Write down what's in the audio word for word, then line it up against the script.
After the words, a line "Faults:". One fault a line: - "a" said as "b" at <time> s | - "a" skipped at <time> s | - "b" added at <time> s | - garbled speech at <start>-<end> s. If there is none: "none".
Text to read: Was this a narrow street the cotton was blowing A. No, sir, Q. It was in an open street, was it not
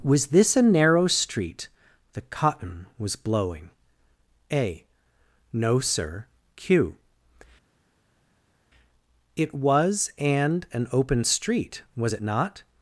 Was this a narrow street the cotton was blowing A. No, sir, Q. It was and an open street, was it not
Faults:
- "in" said as "and" at 10.2 s